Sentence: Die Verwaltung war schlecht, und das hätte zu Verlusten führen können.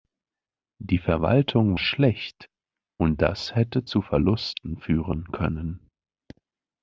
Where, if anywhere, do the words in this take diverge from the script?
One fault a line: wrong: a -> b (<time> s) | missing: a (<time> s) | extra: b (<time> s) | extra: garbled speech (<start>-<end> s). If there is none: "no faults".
missing: war (1.8 s)